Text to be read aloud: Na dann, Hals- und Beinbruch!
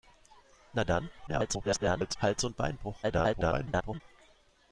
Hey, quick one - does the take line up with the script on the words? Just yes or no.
no